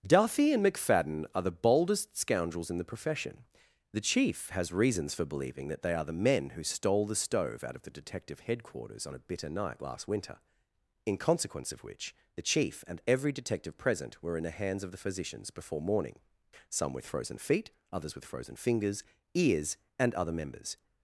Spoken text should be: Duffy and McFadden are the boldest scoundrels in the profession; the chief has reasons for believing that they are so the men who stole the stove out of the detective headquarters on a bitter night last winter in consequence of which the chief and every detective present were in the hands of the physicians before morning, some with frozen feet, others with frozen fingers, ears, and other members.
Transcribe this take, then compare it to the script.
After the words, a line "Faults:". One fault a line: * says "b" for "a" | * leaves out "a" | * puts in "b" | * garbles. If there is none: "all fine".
Duffy and McFadden are the boldest scoundrels in the profession; the chief has reasons for believing that they are the men who stole the stove out of the detective headquarters on a bitter night last winter in consequence of which the chief and every detective present were in the hands of the physicians before morning, some with frozen feet, others with frozen fingers, ears, and other members.
Faults:
* leaves out "so"